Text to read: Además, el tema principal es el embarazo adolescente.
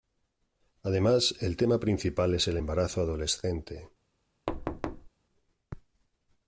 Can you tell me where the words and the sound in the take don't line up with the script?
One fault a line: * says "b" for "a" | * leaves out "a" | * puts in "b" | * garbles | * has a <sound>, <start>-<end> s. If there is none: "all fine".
* has a thud, 4.5-5.1 s